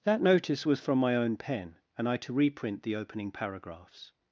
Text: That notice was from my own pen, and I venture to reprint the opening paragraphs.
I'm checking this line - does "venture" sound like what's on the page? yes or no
no